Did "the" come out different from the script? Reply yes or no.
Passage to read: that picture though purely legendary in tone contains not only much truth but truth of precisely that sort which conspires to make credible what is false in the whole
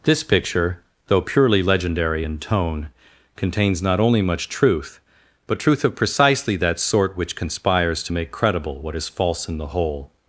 no